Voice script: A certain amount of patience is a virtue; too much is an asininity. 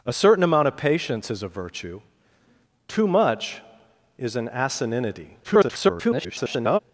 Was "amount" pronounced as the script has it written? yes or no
yes